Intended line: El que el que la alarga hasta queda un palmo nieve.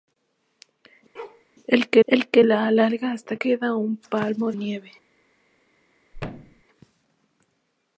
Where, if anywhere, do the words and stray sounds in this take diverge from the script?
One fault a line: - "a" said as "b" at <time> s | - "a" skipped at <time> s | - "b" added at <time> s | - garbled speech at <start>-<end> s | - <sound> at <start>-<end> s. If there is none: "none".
- bark at 1.1-1.4 s
- thud at 6.1-6.6 s